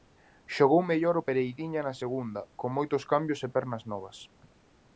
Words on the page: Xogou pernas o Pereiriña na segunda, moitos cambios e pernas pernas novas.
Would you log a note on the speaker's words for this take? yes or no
yes